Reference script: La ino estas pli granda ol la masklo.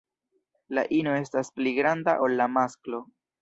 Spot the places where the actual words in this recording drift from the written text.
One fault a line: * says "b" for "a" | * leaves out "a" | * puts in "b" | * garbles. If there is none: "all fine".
all fine